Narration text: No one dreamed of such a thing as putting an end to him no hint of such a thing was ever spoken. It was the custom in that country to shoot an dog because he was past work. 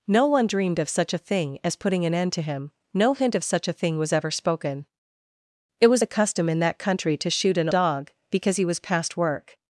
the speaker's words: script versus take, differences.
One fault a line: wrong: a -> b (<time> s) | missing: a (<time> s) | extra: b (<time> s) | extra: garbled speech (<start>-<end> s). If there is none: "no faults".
no faults